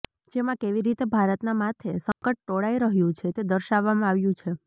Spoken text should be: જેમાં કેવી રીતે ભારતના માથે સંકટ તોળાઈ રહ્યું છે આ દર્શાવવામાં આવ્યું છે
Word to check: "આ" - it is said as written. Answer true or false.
false